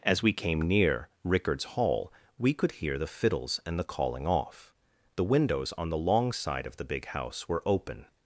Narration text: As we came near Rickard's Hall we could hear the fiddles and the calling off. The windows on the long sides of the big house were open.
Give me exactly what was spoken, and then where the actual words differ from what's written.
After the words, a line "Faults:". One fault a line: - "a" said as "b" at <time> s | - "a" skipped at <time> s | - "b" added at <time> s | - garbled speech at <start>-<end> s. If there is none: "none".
As we came near Rickard's Hall we could hear the fiddles and the calling off. The windows on the long side of the big house were open.
Faults:
- "sides" said as "side" at 6.3 s